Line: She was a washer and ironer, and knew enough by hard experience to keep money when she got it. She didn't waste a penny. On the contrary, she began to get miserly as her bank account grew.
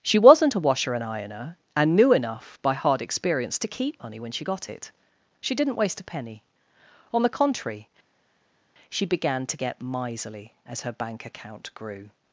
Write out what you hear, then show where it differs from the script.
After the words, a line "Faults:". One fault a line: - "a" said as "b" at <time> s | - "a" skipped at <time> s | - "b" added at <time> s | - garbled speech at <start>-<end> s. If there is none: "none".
She wasn't a washer and ironer, and knew enough by hard experience to keep money when she got it. She didn't waste a penny. On the contrary, she began to get miserly as her bank account grew.
Faults:
- "was" said as "wasn't" at 0.2 s